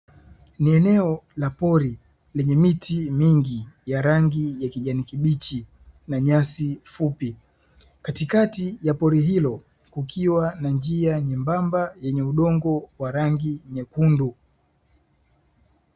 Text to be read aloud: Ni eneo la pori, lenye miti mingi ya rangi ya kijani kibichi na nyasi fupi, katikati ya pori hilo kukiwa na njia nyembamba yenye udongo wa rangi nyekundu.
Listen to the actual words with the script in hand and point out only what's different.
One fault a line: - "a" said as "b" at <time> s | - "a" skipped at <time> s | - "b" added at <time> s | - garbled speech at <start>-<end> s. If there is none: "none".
none